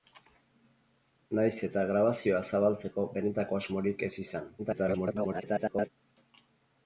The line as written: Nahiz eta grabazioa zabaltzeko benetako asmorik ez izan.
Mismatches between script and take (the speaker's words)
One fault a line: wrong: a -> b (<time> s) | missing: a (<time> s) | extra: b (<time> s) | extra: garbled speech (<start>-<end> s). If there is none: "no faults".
extra: garbled speech (4.6-5.9 s)